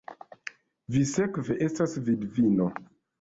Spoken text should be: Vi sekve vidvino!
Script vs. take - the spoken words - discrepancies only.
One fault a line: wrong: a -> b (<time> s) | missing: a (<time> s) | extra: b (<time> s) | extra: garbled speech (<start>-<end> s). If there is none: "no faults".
extra: estas (1.7 s)